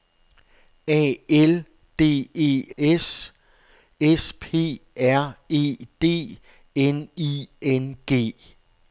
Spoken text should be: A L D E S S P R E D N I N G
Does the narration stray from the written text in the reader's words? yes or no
no